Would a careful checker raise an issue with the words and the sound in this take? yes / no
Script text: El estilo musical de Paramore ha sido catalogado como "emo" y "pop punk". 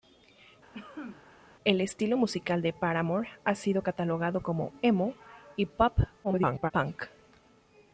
yes